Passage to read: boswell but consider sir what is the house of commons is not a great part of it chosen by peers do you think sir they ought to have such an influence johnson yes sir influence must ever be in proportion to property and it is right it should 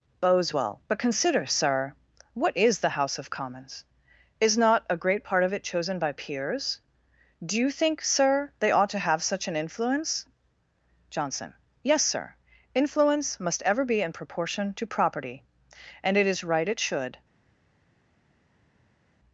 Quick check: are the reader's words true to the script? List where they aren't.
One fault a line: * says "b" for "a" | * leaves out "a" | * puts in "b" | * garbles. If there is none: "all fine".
all fine